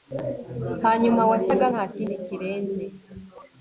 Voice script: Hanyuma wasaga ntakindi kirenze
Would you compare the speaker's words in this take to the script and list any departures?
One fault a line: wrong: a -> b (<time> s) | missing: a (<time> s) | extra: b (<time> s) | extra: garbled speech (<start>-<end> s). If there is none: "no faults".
no faults